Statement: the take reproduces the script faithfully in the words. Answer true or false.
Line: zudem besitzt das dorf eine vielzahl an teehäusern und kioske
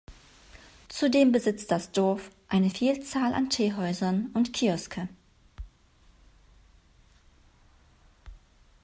true